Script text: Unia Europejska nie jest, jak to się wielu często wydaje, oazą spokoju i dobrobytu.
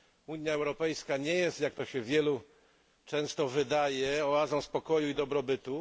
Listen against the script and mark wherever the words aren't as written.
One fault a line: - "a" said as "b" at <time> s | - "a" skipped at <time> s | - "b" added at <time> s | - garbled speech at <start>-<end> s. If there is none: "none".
none